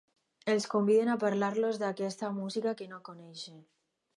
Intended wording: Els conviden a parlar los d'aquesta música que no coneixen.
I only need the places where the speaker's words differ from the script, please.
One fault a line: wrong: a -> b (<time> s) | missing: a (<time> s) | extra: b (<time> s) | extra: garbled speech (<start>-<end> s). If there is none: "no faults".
no faults